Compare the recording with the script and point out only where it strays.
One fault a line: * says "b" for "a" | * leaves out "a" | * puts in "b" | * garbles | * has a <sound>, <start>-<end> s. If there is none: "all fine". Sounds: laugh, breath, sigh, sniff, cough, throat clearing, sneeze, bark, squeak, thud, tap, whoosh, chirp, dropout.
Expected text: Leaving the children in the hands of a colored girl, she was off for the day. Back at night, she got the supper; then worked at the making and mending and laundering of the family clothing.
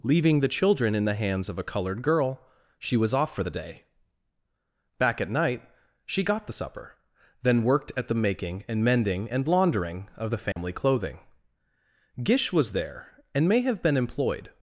* has a dropout, 10.5-10.6 s
* puts in "Gish was there and may have been employed"